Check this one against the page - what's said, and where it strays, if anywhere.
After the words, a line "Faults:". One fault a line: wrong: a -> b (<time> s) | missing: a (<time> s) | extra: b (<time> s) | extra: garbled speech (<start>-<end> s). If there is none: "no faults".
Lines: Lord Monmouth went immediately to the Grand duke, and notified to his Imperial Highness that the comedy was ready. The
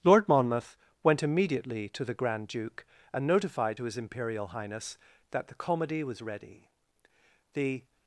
Lord Monmouth went immediately to the Grand duke, and notified to his Imperial Highness that the comedy was ready. The
Faults:
no faults